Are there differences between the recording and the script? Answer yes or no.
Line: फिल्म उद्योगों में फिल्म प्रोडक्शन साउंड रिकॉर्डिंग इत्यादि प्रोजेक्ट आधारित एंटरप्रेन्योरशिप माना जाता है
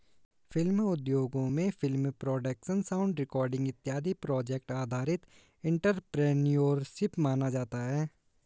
no